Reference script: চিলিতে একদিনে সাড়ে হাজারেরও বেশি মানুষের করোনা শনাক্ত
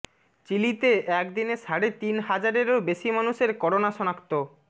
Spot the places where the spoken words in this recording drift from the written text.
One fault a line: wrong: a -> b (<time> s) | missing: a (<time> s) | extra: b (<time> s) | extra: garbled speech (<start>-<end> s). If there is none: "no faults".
extra: তিন (2.0 s)